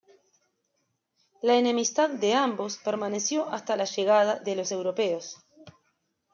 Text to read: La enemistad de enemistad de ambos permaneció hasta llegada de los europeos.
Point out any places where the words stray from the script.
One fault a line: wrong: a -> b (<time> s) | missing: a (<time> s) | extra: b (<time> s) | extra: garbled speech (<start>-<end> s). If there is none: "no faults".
missing: enemistad de (2.3 s)
extra: la (3.8 s)